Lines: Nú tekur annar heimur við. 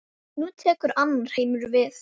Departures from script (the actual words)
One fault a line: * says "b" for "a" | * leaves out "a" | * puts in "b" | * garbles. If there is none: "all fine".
all fine